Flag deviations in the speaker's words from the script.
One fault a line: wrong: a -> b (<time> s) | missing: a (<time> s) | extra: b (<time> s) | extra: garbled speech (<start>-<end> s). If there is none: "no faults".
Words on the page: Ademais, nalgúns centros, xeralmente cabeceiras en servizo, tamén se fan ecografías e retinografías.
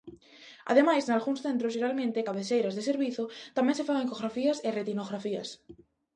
wrong: en -> de (2.8 s)